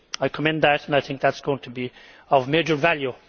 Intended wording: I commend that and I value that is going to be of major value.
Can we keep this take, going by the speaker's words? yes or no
no